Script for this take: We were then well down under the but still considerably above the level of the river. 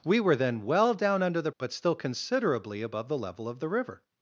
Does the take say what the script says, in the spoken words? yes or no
yes